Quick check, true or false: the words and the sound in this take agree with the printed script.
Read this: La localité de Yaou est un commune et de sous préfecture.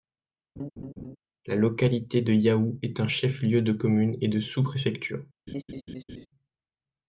false